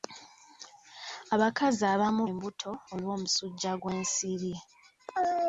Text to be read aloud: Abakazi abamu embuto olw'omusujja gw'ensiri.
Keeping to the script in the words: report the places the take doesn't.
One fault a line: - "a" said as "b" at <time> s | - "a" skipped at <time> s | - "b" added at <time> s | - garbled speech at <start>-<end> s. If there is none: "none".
none